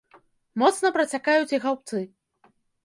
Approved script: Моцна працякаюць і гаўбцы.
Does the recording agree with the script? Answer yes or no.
yes